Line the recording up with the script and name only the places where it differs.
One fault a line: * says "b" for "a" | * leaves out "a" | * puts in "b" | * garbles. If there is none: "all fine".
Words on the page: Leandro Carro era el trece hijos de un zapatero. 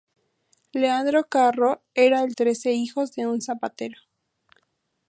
all fine